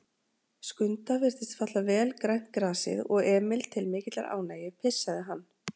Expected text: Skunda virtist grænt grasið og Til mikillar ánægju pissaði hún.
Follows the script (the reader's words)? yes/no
no